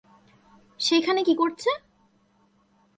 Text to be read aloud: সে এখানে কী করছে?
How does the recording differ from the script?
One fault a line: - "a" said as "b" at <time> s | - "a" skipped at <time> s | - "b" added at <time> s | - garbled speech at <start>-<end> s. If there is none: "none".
none